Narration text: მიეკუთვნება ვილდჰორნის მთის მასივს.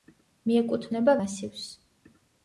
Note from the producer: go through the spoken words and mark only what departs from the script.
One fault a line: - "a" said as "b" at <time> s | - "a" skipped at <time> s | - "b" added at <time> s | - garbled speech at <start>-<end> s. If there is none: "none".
- "ვილდჰორნის მთის" skipped at 1.1 s